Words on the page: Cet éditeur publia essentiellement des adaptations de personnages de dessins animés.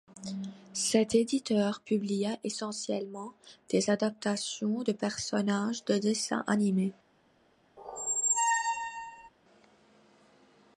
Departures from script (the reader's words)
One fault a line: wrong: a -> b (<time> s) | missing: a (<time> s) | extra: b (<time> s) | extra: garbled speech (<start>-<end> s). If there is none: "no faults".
no faults